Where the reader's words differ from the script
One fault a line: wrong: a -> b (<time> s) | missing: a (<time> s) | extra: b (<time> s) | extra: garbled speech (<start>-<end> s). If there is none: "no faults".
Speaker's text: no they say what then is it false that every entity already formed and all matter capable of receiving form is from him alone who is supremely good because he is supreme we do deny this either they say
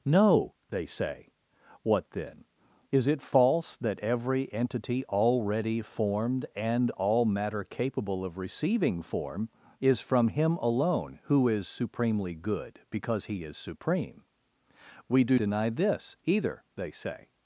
no faults